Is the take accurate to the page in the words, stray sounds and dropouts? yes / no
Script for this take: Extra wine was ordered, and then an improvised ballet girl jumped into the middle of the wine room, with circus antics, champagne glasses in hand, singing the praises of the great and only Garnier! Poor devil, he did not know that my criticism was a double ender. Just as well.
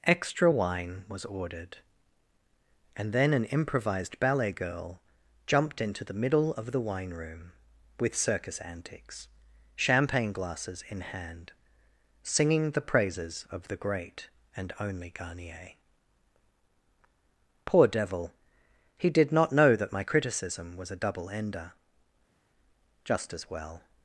yes